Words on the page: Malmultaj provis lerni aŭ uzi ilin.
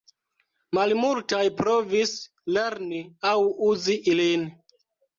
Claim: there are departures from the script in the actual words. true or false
false